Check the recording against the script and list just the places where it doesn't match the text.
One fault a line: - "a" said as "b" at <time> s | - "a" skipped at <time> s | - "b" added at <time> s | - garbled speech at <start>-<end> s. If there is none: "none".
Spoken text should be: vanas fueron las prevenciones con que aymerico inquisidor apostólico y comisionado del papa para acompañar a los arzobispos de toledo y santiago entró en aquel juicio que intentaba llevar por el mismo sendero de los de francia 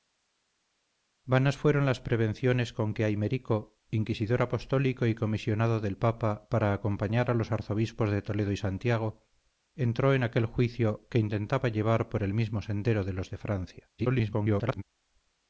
- garbled speech at 14.0-14.8 s